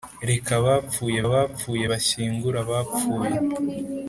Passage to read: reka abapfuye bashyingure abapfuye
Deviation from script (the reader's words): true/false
true